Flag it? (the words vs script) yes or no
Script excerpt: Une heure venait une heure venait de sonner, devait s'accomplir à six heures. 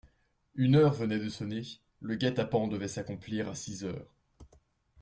yes